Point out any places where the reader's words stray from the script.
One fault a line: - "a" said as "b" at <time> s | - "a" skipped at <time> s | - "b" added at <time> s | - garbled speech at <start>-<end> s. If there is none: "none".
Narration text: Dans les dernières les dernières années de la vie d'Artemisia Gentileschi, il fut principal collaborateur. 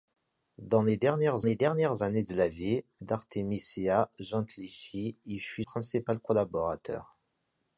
none